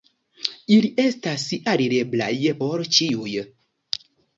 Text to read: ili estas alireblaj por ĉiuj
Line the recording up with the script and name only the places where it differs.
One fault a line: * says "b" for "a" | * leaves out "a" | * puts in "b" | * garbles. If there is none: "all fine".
all fine